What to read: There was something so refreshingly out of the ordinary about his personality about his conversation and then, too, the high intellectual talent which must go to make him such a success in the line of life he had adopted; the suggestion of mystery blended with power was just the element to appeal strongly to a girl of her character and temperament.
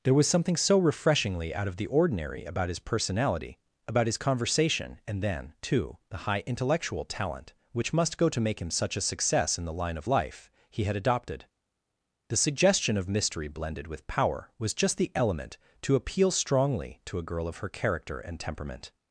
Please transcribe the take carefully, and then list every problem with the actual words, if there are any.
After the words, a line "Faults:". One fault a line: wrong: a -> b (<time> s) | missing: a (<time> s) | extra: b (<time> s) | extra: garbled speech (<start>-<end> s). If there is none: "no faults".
There was something so refreshingly out of the ordinary about his personality about his conversation and then, too, the high intellectual talent which must go to make him such a success in the line of life he had adopted; the suggestion of mystery blended with power was just the element to appeal strongly to a girl of her character and temperament.
Faults:
no faults